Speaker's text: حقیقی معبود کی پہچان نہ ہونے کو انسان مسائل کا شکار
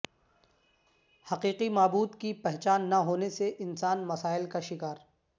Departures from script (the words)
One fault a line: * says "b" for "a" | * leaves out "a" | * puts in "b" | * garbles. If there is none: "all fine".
* says "سے" for "کو"